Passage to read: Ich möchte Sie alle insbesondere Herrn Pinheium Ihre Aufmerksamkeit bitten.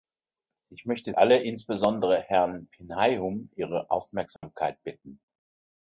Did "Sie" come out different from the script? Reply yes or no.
yes